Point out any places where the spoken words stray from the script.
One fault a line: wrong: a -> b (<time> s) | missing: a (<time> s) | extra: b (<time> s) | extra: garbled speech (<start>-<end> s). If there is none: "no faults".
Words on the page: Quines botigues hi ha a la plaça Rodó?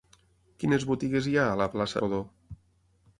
no faults